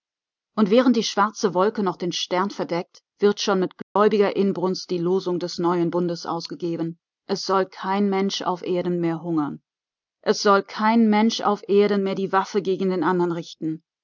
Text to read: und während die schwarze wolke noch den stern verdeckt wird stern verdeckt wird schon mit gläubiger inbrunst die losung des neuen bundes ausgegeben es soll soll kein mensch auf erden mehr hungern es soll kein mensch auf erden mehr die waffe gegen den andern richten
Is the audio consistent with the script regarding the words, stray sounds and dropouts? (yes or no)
no